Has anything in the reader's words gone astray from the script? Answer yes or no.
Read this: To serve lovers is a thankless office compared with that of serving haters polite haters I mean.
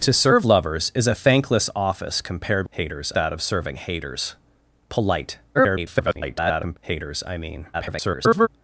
yes